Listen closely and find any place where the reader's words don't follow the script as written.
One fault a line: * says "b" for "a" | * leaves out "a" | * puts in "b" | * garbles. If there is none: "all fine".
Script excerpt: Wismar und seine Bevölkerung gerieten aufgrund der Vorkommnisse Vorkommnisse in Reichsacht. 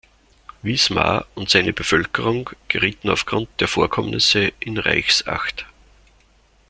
* leaves out "Vorkommnisse"